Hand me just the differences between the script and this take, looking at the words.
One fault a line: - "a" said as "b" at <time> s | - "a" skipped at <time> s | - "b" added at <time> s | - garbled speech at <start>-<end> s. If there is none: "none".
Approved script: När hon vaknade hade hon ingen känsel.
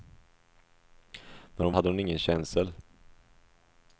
- "vaknade" skipped at 1.7 s